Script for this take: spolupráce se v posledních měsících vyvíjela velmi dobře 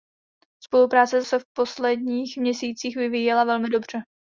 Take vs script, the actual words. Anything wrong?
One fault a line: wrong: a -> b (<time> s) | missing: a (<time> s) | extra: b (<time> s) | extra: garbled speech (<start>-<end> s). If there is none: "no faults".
no faults